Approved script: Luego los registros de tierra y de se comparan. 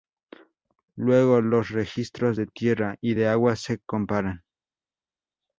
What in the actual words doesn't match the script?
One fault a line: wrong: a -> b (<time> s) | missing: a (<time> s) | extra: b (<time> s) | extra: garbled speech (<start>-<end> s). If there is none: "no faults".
extra: agua (3.3 s)